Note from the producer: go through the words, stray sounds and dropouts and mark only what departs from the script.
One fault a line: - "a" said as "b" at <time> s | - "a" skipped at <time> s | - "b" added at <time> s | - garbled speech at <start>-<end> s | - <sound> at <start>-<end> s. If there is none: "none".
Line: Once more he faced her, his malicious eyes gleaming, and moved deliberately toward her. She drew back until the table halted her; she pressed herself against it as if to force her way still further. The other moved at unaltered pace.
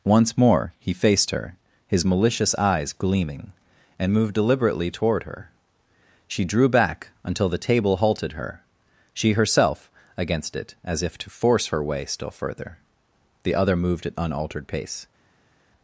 - "pressed" skipped at 9.3 s